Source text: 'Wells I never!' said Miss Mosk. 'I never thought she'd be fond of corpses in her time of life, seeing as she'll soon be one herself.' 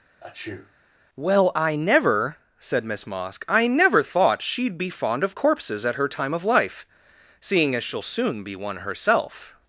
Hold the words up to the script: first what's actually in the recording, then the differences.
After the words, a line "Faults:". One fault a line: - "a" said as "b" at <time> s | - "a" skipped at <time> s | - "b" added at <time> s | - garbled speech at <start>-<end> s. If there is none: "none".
'Well I never!' said Miss Mosk. 'I never thought she'd be fond of corpses at her time of life, seeing as she'll soon be one herself.'
Faults:
- "Wells" said as "Well" at 1.1 s
- "in" said as "at" at 5.8 s